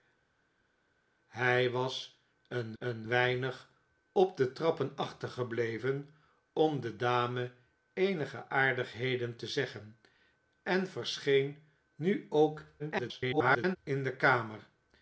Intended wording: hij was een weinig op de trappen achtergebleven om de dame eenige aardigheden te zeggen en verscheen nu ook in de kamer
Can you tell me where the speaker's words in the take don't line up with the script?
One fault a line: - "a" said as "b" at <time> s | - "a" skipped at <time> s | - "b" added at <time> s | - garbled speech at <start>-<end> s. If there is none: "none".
- "een" added at 2.8 s
- garbled speech at 12.8-13.8 s